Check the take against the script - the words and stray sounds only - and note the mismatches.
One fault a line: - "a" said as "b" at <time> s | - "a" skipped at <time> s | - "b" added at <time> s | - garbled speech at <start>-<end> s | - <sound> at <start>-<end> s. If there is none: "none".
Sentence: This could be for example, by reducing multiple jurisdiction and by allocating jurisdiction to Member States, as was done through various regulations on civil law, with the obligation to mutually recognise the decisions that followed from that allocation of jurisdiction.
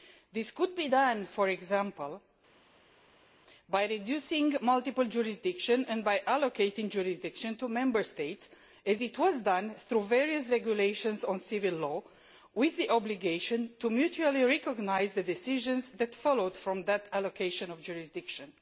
- "done" added at 0.8 s